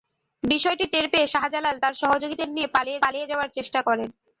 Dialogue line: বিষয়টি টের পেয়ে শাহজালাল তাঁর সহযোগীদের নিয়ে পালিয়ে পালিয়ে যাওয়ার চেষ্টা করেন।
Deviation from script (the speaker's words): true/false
false